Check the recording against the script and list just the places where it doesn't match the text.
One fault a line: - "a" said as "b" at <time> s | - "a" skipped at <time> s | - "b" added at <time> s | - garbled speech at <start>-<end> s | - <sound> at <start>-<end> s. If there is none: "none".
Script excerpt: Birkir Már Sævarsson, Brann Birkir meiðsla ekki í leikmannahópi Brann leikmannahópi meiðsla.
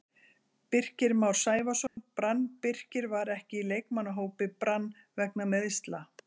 - dropout at 1.9-2.0 s
- "meiðsla" said as "var" at 3.1 s
- "leikmannahópi" said as "vegna" at 5.2 s